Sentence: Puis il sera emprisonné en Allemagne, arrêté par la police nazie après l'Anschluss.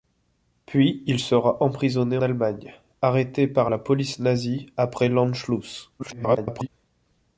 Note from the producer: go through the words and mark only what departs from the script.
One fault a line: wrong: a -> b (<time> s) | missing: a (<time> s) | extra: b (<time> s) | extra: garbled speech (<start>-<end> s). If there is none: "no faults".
missing: en (2.2 s)
extra: garbled speech (6.0-6.7 s)